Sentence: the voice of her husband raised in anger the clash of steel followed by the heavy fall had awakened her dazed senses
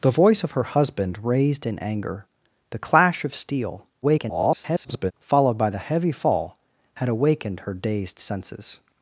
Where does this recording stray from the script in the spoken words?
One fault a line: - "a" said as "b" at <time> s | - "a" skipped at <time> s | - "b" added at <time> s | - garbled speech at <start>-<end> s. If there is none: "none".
- garbled speech at 4.0-5.1 s